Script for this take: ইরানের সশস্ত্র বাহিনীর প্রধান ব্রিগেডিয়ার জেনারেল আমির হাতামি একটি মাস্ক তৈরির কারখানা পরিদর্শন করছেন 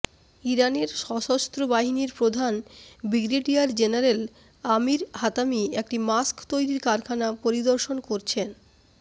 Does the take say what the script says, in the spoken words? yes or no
yes